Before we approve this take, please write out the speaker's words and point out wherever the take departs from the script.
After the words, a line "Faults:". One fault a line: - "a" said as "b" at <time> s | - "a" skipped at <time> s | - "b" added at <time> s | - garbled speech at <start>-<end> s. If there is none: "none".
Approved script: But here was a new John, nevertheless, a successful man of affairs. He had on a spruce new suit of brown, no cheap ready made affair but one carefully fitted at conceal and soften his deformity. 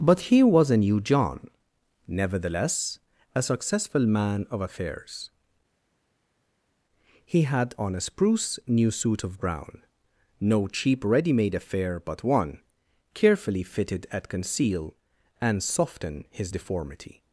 But here was a new John, nevertheless, a successful man of affairs. He had on a spruce new suit of brown, no cheap ready made affair but one carefully fitted at conceal and soften his deformity.
Faults:
none